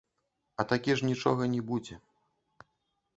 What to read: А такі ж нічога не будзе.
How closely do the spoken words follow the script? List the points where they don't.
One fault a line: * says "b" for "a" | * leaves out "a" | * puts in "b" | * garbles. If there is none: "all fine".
all fine